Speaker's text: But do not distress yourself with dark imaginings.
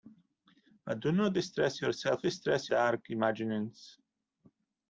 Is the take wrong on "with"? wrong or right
wrong